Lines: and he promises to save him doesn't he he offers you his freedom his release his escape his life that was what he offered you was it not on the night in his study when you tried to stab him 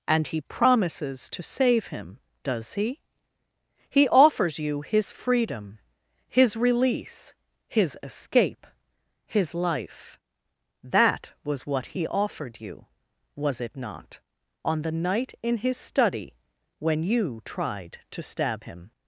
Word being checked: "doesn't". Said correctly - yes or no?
no